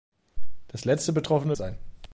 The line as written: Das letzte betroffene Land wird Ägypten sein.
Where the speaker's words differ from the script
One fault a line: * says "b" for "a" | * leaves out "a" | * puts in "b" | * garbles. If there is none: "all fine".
* leaves out "Land wird Ägypten"